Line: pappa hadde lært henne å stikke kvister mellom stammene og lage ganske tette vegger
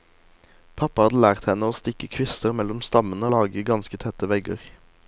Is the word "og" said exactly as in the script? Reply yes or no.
no